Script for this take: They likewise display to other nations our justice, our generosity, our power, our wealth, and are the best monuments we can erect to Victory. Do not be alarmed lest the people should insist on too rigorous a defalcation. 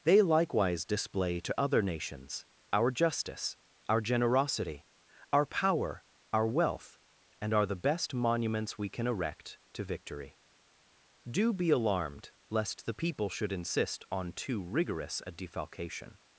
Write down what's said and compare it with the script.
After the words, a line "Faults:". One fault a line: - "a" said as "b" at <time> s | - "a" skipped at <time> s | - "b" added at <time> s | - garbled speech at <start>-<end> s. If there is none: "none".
They likewise display to other nations our justice, our generosity, our power, our wealth, and are the best monuments we can erect to Victory. Do be alarmed lest the people should insist on too rigorous a defalcation.
Faults:
- "not" skipped at 11.5 s